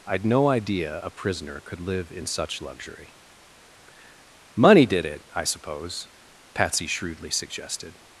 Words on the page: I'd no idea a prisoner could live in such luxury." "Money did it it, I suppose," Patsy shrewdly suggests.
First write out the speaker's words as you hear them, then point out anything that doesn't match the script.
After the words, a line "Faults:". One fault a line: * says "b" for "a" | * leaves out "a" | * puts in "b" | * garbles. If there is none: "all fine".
I'd no idea a prisoner could live in such luxury." "Money did it, I suppose," Patsy shrewdly suggested.
Faults:
* leaves out "it"
* says "suggested" for "suggests"